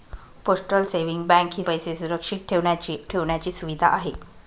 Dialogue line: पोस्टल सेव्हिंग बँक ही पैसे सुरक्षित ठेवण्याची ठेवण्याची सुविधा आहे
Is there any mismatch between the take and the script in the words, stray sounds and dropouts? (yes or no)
no